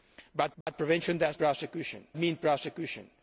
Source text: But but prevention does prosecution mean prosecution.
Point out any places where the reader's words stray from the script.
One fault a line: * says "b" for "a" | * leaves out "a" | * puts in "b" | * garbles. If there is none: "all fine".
all fine